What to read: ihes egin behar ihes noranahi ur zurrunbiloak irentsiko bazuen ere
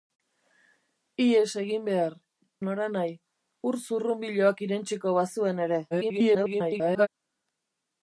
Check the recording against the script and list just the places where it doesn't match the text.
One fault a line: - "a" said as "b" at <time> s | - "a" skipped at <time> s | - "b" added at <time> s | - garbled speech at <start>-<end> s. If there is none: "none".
- "ihes" skipped at 2.1 s
- garbled speech at 5.9-7.1 s